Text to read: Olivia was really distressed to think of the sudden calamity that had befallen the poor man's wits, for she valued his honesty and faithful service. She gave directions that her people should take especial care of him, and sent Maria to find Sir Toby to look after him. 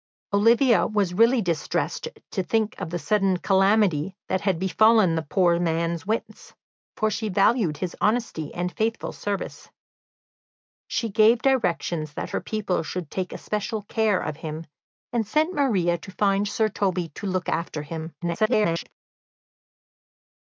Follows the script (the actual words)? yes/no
no